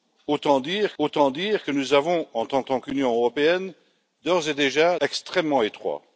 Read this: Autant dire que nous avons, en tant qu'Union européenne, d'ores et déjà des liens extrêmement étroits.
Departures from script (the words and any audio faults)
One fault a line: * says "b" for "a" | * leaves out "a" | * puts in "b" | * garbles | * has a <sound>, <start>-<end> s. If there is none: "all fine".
* puts in "autant dire"
* puts in "tant"
* leaves out "des liens"